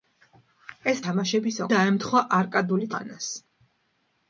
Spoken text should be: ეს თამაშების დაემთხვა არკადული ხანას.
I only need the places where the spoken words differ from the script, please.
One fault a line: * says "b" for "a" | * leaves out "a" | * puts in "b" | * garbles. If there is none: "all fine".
all fine